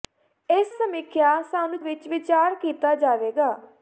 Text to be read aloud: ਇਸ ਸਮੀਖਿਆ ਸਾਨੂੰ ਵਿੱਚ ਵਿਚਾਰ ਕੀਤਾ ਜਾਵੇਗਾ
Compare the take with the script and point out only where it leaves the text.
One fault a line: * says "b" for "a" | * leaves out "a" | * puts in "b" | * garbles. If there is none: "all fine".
all fine